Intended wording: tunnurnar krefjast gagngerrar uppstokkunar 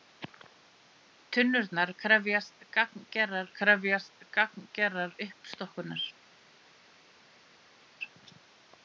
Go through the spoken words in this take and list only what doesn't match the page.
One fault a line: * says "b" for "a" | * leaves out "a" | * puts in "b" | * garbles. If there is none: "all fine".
* puts in "krefjast gagngerrar"